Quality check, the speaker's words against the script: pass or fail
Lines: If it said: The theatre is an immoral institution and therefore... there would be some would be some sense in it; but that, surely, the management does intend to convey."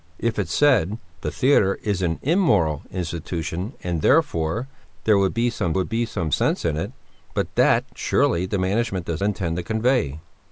pass